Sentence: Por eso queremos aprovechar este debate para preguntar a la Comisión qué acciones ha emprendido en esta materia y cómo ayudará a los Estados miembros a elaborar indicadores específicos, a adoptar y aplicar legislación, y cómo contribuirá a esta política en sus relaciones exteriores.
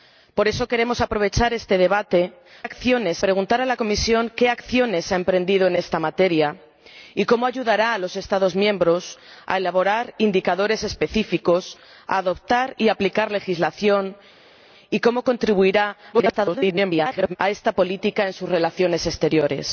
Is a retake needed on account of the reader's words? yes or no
yes